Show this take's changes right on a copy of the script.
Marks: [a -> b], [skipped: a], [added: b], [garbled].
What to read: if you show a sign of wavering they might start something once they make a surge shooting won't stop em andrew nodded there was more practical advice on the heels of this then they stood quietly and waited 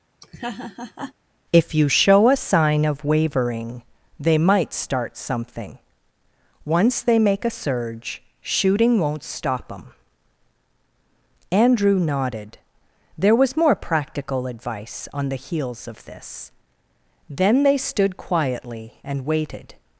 if you show a sign of wavering they might start something once they make a surge shooting won't stop em andrew nodded there was more practical advice on the heels of this then they stood quietly and waited